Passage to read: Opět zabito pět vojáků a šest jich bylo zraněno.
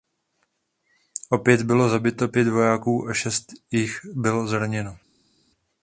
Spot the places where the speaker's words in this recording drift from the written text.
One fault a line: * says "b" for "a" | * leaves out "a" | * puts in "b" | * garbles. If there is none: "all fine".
* puts in "bylo"